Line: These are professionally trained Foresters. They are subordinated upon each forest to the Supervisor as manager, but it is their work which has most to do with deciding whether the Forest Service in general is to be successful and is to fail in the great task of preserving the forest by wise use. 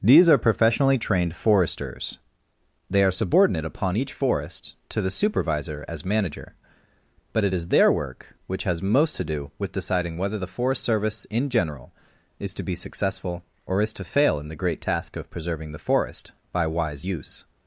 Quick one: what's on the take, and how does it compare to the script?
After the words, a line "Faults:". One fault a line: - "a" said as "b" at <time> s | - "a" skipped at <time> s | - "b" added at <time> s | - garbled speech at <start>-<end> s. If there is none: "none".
These are professionally trained Foresters. They are subordinate upon each forest to the Supervisor as manager, but it is their work which has most to do with deciding whether the Forest Service in general is to be successful or is to fail in the great task of preserving the forest by wise use.
Faults:
- "subordinated" said as "subordinate" at 3.1 s
- "and" said as "or" at 13.7 s